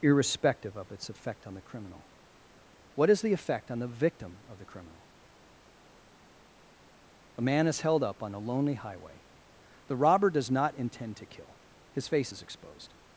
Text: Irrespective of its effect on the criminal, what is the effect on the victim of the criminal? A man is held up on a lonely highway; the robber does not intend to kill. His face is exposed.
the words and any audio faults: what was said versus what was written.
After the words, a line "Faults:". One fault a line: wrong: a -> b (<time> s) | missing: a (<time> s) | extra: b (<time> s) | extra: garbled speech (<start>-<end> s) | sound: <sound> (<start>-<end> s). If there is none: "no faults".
Irrespective of its effect on the criminal, what is the effect on the victim of the criminal? A man is held up on a lonely highway; the robber does not intend to kill. His face is exposed.
Faults:
no faults